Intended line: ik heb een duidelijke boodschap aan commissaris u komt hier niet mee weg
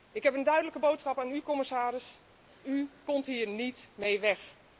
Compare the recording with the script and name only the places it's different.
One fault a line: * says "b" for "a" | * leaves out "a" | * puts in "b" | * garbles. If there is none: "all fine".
* puts in "u"